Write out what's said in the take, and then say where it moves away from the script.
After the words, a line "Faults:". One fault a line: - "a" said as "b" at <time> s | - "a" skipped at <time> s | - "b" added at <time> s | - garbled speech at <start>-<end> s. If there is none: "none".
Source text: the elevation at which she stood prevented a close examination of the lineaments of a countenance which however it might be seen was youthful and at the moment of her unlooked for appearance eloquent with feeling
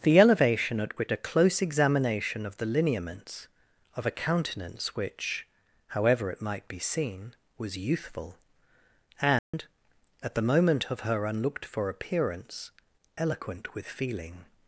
the elevation at which a close examination of the lineaments of a countenance which however it might be seen was youthful and at the moment of her unlooked for appearance eloquent with feeling
Faults:
- "she stood prevented" skipped at 1.1 s